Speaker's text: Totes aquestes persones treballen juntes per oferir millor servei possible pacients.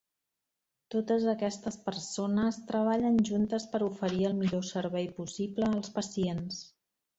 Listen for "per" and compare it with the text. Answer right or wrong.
right